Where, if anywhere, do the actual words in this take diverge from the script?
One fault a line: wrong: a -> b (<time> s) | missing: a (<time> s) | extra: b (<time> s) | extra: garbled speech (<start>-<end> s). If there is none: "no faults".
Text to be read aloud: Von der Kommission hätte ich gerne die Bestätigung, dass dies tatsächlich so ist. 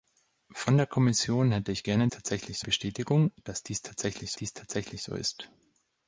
wrong: die -> tatsächlich (2.1 s)
extra: dies tatsächlich (4.3 s)